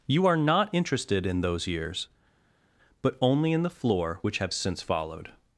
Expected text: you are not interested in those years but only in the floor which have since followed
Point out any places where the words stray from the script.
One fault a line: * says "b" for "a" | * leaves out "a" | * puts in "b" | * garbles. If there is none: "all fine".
all fine